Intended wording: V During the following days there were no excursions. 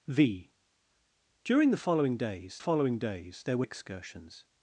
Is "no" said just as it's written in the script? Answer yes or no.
no